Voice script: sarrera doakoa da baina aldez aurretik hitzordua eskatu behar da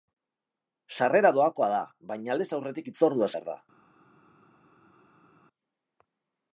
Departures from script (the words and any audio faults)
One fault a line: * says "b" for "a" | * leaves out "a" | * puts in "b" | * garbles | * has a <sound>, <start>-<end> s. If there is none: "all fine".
* leaves out "eskatu"